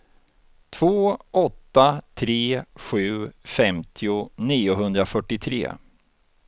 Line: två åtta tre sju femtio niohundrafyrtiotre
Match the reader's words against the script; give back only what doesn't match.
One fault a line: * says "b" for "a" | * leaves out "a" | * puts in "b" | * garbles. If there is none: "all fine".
all fine